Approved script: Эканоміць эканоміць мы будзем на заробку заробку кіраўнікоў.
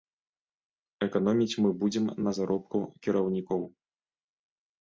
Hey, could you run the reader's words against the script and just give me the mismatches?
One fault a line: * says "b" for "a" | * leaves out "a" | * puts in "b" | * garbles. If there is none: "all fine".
* leaves out "эканоміць"
* leaves out "заробку"